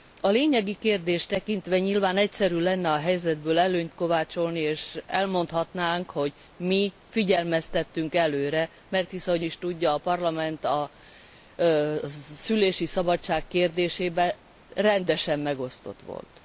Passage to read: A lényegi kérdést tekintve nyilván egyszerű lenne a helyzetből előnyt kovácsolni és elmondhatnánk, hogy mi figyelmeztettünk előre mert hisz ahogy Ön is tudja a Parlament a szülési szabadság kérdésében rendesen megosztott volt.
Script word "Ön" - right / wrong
wrong